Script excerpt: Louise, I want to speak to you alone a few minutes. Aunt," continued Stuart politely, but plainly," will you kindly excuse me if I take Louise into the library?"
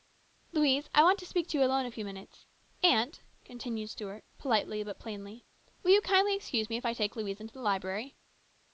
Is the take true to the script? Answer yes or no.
yes